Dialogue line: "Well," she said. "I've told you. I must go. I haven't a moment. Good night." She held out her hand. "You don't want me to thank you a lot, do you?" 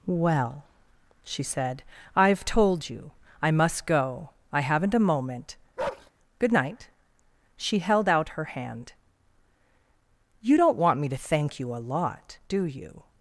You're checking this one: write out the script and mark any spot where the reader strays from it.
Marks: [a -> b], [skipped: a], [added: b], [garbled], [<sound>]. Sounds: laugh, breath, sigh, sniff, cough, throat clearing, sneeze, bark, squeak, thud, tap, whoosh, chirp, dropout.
"Well," she said. "I've told you. I must go. I haven't a moment. [bark] Good night." She held out her hand. "You don't want me to thank you a lot, do you?"